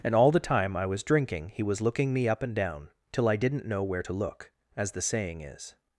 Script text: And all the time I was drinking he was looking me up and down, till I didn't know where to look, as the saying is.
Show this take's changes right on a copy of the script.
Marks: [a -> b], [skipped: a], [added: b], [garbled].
And all the time I was drinking he was looking me up and down, till I didn't know where to look, as the saying is.